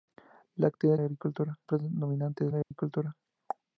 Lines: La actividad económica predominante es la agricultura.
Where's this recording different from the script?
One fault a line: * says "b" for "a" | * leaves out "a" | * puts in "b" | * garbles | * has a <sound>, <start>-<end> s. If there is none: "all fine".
* says "agricultura" for "económica"
* has a dropout, 2.6-2.7 s